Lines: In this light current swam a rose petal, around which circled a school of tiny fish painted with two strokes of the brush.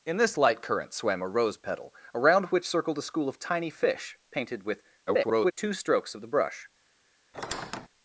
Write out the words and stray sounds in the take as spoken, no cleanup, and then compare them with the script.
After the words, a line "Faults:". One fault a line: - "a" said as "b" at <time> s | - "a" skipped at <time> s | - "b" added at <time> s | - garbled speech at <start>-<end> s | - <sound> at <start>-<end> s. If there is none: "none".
In this light current swam a rose petal, around which circled a school of tiny fish painted with [garbled] two strokes of the brush.
Faults:
- garbled speech at 5.1-5.5 s
- squeak at 7.3-7.9 s